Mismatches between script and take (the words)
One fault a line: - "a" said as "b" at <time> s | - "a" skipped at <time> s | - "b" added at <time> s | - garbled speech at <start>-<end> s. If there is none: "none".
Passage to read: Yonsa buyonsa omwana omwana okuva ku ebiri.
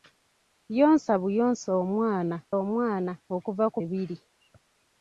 none